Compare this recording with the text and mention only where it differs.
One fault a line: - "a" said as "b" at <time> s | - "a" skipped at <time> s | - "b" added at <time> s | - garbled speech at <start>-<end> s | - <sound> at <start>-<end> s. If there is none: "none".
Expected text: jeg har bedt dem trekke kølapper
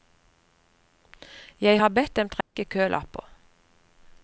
- dropout at 2.4-2.6 s